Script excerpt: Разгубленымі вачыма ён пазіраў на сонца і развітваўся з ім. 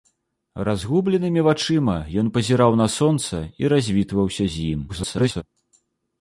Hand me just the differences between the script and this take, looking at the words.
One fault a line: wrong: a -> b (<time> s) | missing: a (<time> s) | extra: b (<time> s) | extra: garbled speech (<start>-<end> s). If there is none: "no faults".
extra: garbled speech (4.9-5.4 s)